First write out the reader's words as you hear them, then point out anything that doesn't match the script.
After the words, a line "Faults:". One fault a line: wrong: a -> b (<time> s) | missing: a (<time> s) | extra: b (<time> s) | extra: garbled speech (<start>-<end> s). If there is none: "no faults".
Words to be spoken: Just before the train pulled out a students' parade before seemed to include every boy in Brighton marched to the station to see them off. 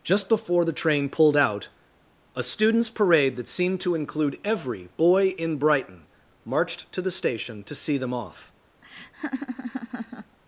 Just before the train pulled out a students' parade that seemed to include every boy in Brighton marched to the station to see them off.
Faults:
wrong: before -> that (3.4 s)